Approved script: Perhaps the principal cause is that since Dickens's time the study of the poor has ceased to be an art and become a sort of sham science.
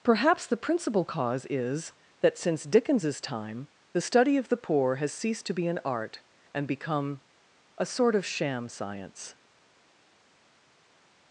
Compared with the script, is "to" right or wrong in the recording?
right